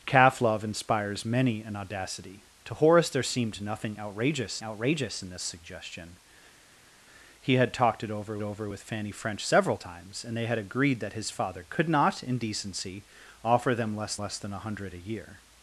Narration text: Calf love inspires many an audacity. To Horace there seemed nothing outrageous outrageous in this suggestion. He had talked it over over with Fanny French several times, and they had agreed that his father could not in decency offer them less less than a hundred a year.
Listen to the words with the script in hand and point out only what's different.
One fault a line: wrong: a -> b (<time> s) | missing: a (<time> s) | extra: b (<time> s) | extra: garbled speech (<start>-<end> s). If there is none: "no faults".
no faults